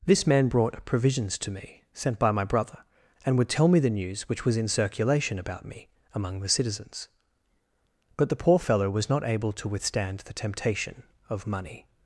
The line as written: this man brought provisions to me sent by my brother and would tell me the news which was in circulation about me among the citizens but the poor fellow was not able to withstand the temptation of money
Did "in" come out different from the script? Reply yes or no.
no